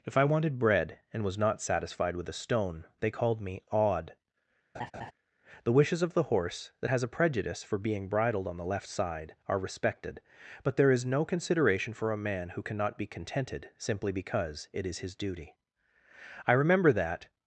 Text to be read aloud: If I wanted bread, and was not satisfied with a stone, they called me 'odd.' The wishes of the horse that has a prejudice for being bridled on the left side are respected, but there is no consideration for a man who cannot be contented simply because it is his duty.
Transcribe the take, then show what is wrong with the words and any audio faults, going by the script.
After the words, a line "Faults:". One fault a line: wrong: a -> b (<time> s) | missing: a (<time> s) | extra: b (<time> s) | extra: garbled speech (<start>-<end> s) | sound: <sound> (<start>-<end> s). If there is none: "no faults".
If I wanted bread, and was not satisfied with a stone, they called me 'odd.' The wishes of the horse that has a prejudice for being bridled on the left side are respected, but there is no consideration for a man who cannot be contented simply because it is his duty. I remember that
Faults:
sound: laugh (4.7-5.1 s)
extra: I remember that (16.5 s)